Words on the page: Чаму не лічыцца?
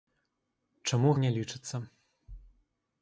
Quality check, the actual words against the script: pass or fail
pass